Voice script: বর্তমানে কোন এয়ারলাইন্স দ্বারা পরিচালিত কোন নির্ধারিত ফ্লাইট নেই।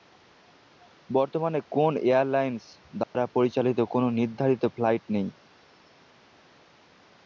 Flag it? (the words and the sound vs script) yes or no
yes